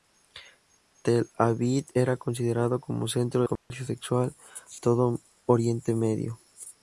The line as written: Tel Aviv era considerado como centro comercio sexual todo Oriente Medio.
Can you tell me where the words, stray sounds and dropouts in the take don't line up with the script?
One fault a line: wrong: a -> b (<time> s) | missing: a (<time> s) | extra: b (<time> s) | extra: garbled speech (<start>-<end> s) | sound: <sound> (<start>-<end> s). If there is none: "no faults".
sound: dropout (3.6-3.7 s)